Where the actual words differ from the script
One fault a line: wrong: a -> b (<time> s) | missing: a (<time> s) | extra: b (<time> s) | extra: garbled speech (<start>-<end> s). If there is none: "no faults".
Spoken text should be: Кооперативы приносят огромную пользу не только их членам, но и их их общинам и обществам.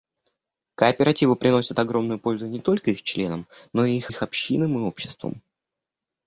no faults